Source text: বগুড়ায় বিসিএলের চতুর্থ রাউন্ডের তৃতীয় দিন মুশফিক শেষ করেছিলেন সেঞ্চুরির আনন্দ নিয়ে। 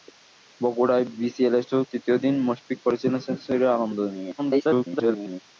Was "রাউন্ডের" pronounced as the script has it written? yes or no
no